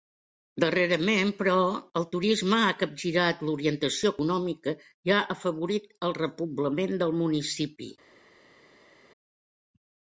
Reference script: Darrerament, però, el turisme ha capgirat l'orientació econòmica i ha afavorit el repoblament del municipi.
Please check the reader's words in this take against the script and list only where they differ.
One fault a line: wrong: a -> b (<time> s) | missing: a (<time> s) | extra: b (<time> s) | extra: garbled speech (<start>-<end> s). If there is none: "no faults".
no faults